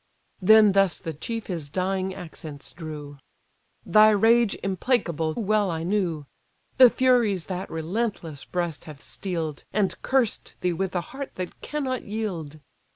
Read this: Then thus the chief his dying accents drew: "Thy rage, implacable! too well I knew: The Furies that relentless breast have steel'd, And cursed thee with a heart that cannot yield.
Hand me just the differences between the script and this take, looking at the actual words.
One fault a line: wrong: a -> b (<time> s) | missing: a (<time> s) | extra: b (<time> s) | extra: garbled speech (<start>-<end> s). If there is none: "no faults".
missing: too (5.3 s)